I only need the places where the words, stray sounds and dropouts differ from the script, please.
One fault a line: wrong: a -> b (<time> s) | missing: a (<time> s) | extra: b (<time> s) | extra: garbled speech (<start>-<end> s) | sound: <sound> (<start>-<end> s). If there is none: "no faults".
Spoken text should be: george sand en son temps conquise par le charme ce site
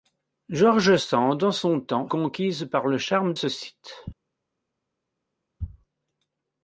no faults